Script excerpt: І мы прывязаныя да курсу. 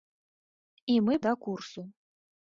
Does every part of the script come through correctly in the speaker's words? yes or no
no